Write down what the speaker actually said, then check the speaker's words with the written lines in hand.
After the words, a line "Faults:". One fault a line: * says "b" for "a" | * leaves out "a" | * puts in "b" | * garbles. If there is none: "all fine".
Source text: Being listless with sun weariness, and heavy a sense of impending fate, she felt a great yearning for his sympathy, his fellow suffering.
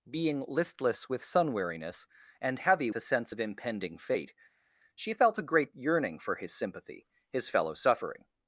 Being listless with sun weariness, and heavy a sense of impending fate, she felt a great yearning for his sympathy, his fellow suffering.
Faults:
all fine